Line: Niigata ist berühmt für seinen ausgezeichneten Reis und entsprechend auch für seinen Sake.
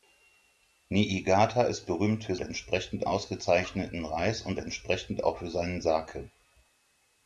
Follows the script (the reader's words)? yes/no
no